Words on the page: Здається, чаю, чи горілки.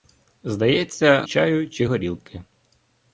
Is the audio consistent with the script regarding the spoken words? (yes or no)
yes